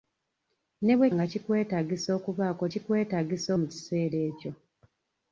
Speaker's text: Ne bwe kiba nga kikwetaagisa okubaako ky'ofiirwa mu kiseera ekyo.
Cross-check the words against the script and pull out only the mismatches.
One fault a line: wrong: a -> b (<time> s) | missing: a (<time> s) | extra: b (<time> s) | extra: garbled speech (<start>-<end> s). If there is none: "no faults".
missing: kiba (1.1 s)
wrong: ky'ofiirwa -> kikwetaagisa (2.7 s)